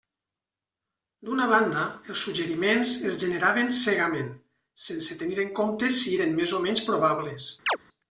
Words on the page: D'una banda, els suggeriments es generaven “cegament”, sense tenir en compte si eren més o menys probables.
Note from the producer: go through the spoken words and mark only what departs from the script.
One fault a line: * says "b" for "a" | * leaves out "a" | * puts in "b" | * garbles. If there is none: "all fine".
all fine